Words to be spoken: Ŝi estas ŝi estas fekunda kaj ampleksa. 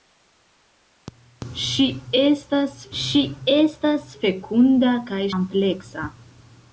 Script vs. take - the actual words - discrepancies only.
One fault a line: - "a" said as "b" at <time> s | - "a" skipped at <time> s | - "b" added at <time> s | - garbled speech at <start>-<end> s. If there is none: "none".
none